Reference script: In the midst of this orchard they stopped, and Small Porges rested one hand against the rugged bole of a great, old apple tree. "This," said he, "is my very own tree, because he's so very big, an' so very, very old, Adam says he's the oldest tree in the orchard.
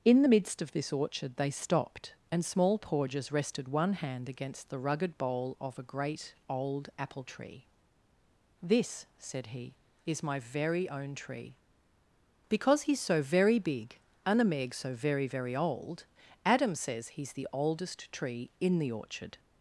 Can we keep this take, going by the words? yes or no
no